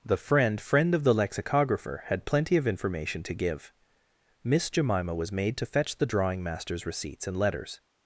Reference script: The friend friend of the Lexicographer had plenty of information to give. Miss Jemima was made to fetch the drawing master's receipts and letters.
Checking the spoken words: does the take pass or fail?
pass